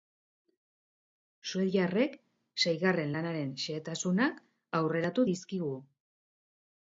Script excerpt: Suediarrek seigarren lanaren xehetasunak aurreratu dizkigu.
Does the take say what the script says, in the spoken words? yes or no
yes